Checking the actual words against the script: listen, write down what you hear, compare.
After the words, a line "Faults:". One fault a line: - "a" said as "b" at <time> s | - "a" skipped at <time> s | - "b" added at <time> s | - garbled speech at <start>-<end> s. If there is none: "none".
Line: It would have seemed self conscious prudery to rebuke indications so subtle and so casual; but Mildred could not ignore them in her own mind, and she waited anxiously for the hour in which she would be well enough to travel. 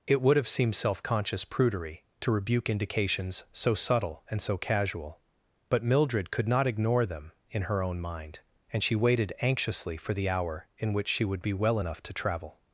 It would have seemed self conscious prudery to rebuke indications so subtle and so casual; but Mildred could not ignore them in her own mind, and she waited anxiously for the hour in which she would be well enough to travel.
Faults:
none